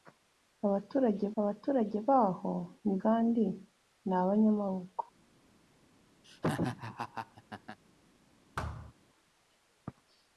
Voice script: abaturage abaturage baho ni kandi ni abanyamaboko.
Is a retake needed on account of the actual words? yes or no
no